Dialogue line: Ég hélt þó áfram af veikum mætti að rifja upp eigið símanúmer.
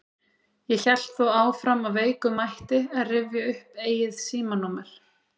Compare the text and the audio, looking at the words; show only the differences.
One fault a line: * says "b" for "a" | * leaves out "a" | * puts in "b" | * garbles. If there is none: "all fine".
all fine